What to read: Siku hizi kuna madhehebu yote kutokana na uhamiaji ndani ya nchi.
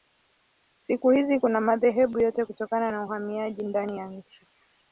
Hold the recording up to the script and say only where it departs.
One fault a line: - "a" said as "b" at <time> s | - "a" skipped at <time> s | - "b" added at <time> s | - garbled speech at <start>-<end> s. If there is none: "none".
none